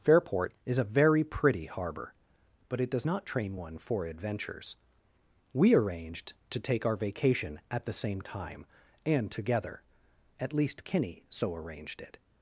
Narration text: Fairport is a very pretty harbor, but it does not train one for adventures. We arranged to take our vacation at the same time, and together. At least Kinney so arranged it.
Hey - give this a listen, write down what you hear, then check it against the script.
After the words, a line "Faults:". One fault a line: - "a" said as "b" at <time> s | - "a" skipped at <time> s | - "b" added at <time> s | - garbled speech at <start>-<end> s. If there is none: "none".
Fairport is a very pretty harbor, but it does not train one for adventures. We arranged to take our vacation at the same time, and together. At least Kinney so arranged it.
Faults:
none